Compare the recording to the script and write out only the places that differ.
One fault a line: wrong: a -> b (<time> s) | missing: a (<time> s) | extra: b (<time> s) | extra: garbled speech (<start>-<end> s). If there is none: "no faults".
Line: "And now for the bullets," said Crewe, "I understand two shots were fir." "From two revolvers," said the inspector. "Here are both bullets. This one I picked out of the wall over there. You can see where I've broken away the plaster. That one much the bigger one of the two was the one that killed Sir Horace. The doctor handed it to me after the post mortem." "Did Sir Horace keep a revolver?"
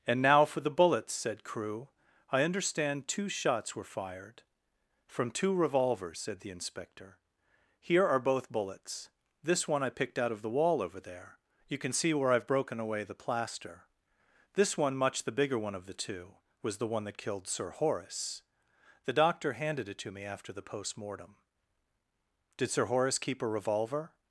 wrong: fir -> fired (3.8 s)
wrong: That -> This (14.5 s)